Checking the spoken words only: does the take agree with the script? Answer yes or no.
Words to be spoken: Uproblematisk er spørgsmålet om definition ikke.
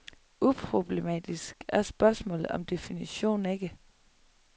yes